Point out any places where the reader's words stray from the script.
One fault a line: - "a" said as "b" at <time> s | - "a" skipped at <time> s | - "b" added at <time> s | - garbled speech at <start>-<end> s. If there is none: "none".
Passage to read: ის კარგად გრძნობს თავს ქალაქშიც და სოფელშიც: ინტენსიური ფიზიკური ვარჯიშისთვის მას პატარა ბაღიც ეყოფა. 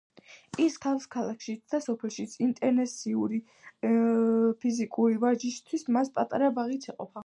- "კარგად გრძნობს" skipped at 0.8 s